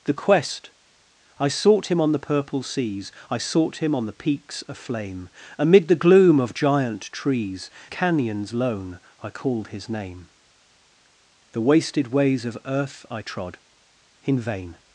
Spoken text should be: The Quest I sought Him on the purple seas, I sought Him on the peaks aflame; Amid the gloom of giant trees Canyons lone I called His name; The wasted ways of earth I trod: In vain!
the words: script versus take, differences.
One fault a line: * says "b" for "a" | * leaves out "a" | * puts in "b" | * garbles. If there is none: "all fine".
all fine